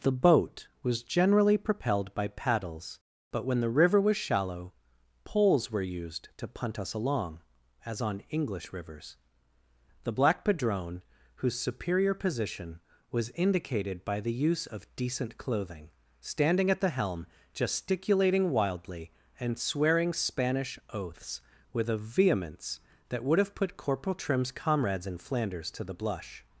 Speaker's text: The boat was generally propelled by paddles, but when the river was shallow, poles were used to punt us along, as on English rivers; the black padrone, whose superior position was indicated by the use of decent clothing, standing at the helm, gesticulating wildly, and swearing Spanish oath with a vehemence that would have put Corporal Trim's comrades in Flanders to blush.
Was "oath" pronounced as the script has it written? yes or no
no